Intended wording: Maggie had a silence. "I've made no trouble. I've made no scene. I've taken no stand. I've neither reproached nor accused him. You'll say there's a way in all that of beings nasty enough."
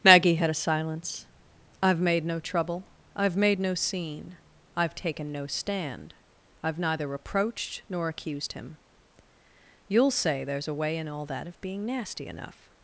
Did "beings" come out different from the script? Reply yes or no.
yes